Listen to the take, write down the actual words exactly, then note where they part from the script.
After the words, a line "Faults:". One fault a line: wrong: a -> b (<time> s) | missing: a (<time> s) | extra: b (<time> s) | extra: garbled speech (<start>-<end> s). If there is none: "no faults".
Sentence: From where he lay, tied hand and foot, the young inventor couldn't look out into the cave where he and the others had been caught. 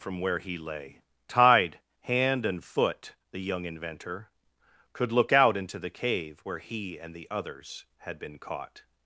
From where he lay, tied hand and foot, the young inventor could look out into the cave where he and the others had been caught.
Faults:
wrong: couldn't -> could (4.9 s)